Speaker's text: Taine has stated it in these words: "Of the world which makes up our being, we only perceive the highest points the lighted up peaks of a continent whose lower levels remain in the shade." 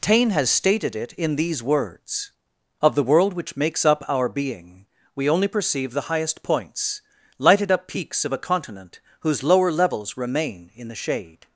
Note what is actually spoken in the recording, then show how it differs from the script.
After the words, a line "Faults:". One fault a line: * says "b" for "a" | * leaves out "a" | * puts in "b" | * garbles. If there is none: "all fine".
Taine has stated it in these words: "Of the world which makes up our being, we only perceive the highest points lighted up peaks of a continent whose lower levels remain in the shade."
Faults:
* leaves out "the"